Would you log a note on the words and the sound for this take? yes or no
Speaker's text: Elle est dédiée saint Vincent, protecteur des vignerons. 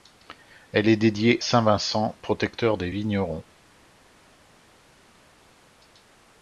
no